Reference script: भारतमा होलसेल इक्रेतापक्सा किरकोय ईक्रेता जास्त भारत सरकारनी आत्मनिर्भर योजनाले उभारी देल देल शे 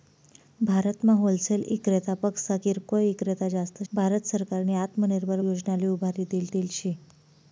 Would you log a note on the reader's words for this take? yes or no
no